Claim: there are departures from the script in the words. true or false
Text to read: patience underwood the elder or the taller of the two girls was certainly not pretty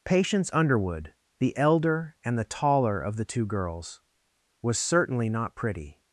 true